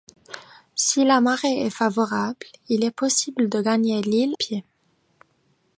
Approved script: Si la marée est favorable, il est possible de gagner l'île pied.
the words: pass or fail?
pass